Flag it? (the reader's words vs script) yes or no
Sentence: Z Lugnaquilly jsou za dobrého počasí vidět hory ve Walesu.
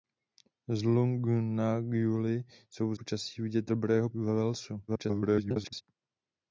yes